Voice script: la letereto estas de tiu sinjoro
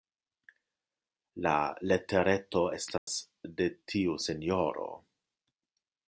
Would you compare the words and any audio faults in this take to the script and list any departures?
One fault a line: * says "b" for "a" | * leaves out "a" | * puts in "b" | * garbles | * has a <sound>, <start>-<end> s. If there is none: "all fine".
* has a dropout, 3.0-3.1 s